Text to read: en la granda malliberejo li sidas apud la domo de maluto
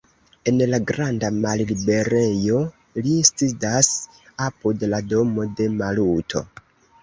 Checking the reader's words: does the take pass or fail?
pass